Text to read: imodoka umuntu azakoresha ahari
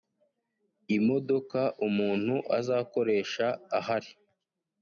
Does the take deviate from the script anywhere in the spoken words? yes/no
no